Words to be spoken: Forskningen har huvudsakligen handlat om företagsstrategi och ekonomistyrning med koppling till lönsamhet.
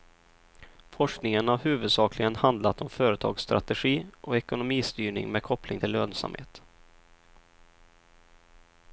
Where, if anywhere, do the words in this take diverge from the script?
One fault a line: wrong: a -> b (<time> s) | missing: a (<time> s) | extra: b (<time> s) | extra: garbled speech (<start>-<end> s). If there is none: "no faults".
no faults